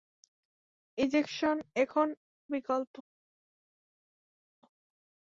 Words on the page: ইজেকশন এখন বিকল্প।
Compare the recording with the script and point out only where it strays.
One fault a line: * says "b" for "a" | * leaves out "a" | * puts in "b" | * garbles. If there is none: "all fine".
all fine